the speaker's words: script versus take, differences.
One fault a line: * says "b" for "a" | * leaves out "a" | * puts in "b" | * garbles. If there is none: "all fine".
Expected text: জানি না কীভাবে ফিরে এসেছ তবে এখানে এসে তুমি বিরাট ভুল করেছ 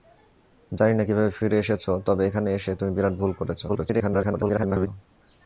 * garbles